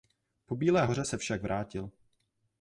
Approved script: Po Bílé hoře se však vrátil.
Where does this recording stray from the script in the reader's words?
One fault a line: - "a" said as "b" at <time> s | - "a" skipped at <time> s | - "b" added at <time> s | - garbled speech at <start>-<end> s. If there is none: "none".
none